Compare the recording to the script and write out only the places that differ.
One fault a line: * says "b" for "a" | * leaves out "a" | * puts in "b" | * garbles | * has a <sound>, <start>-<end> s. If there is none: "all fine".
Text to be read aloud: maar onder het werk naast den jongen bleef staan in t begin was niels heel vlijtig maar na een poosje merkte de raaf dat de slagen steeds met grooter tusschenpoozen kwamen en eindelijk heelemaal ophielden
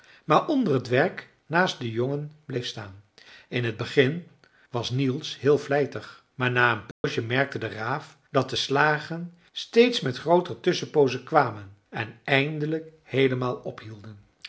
* has a dropout, 6.9-7.0 s